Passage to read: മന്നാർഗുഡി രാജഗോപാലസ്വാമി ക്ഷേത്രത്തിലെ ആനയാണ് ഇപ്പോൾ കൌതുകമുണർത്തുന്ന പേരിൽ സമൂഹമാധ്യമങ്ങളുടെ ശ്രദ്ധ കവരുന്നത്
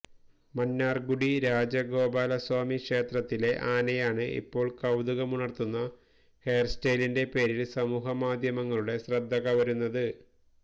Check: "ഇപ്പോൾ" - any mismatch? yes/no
no